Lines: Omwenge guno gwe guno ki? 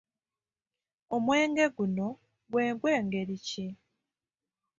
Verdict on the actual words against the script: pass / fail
fail